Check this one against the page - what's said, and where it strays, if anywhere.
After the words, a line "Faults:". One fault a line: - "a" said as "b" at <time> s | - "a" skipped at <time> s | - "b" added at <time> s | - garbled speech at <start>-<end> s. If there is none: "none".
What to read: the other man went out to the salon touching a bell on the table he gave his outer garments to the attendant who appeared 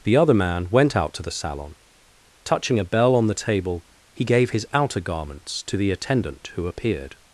the other man went out to the salon touching a bell on the table he gave his outer garments to the attendant who appeared
Faults:
none